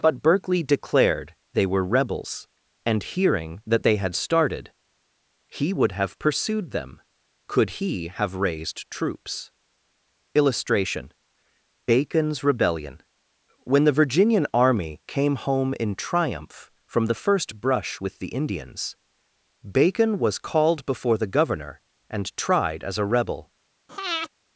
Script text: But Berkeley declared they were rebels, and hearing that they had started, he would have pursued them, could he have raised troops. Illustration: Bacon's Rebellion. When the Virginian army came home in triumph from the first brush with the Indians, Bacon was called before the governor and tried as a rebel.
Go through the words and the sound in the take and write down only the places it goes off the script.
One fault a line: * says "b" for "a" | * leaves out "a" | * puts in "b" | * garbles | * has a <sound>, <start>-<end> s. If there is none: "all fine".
* has a breath, 23.9-24.3 s